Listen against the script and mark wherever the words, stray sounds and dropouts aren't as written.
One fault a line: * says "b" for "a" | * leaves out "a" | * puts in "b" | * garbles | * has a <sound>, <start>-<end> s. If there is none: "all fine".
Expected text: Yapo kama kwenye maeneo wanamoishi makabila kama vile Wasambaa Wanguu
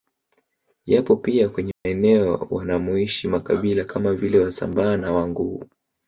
* says "pia" for "kama"
* has a dropout, 1.7-1.9 s
* puts in "na"